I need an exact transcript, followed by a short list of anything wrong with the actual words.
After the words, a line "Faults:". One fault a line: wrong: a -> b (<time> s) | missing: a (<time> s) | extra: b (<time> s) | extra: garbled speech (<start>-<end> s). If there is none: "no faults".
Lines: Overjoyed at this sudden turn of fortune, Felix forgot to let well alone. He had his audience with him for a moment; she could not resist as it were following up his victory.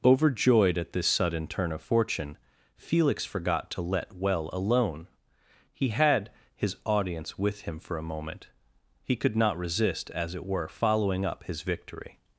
Overjoyed at this sudden turn of fortune, Felix forgot to let well alone. He had his audience with him for a moment; he could not resist as it were following up his victory.
Faults:
wrong: she -> he (9.0 s)